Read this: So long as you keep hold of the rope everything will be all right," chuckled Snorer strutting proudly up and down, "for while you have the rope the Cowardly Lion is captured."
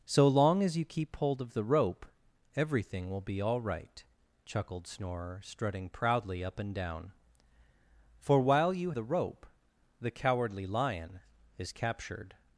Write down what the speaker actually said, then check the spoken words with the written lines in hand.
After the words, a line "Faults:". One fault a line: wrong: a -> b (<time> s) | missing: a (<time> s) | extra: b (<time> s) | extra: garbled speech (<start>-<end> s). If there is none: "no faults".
So long as you keep hold of the rope everything will be all right," chuckled Snorer strutting proudly up and down, "for while you the rope the Cowardly Lion is captured."
Faults:
missing: have (8.9 s)